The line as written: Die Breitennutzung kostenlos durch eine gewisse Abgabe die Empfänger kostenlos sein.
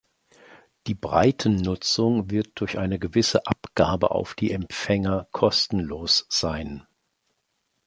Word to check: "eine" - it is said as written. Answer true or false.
true